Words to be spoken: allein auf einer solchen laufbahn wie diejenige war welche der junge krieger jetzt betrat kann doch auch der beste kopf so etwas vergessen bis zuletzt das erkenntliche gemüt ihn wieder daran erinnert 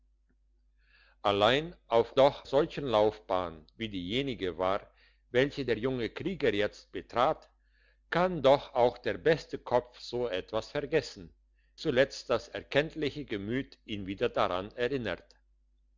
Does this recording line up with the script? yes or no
no